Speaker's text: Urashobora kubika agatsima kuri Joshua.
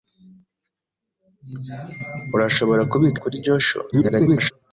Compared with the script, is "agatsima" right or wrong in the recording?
wrong